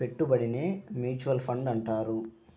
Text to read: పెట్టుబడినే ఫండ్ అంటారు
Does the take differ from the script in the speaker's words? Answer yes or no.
yes